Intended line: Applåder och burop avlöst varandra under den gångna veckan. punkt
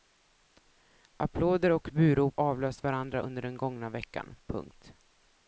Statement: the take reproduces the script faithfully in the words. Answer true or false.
true